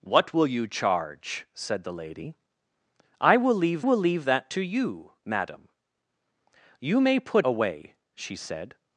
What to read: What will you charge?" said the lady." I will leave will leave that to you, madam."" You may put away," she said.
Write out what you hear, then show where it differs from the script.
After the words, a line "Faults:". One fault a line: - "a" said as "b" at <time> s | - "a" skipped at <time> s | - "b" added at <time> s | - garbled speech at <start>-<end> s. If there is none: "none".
What will you charge?" said the lady." I will leave will leave that to you, madam."" You may put away," she said.
Faults:
none